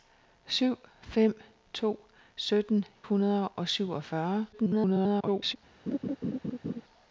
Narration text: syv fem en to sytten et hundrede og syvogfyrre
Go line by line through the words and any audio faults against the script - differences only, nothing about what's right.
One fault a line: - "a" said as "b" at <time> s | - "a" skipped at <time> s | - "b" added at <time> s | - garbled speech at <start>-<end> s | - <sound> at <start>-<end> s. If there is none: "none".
- "en" skipped at 1.4 s
- "et" skipped at 2.8 s
- garbled speech at 4.5-5.6 s
- laugh at 5.9-6.8 s